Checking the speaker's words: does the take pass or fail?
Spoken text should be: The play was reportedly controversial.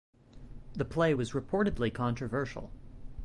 pass